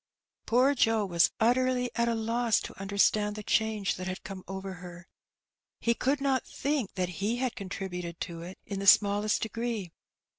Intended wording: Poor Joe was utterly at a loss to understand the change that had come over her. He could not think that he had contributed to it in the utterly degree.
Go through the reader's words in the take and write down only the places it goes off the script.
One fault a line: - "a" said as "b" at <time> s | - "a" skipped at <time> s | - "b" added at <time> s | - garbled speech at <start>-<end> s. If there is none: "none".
- "utterly" said as "smallest" at 8.9 s